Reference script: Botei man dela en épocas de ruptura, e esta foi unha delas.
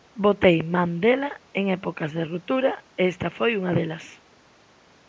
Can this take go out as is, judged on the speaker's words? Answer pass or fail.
pass